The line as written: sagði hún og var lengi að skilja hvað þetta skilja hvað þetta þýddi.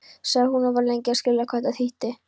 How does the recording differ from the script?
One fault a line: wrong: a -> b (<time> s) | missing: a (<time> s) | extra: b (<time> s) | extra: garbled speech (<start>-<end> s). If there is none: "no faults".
missing: skilja hvað þetta (1.8 s)